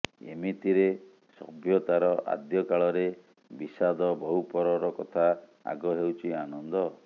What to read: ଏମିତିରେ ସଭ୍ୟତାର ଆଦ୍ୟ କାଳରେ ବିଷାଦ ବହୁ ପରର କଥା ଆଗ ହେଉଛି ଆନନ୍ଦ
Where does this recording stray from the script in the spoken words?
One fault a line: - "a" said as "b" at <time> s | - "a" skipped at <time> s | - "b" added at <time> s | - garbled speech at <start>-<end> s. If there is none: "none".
none